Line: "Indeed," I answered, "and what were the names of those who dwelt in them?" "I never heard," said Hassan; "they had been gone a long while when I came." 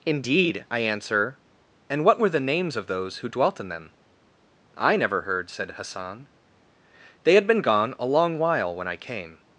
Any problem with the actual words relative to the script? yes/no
yes